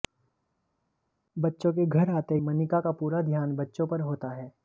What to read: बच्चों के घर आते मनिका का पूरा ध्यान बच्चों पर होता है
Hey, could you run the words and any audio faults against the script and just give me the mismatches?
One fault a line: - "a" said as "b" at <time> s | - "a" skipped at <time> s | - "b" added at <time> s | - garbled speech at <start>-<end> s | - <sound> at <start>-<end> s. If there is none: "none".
none